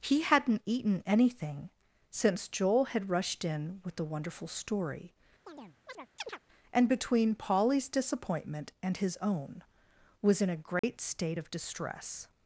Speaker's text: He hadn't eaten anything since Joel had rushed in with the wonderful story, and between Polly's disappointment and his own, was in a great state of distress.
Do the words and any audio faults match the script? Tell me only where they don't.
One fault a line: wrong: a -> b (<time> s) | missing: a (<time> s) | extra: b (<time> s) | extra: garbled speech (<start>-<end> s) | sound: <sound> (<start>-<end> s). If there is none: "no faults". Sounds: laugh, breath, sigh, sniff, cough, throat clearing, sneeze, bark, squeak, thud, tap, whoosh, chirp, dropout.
sound: chirp (5.5-6.4 s)
sound: dropout (10.8-10.8 s)